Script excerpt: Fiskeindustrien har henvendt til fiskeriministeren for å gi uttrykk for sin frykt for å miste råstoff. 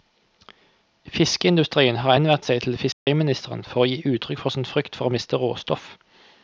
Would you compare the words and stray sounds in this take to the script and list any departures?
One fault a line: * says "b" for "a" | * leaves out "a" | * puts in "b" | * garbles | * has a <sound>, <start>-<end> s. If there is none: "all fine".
* puts in "seg"
* has a dropout, 2.9-3.1 s